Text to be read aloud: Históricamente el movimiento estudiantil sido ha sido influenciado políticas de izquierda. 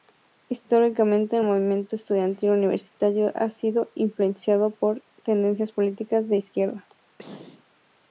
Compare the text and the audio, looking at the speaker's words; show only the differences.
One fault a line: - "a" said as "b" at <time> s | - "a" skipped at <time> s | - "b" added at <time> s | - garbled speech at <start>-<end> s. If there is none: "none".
- "sido" said as "universitario" at 2.5 s
- "por tendencias" added at 4.7 s